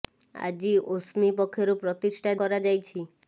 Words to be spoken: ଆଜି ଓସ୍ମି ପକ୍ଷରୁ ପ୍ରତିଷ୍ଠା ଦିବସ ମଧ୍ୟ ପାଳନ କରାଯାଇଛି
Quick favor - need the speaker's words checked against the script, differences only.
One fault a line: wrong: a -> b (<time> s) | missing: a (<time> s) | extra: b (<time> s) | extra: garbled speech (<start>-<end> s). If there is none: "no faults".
missing: ଦିବସ ମଧ୍ୟ ପାଳନ (2.4 s)